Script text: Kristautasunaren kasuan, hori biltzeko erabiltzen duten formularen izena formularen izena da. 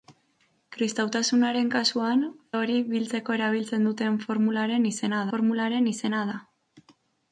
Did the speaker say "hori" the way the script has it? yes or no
yes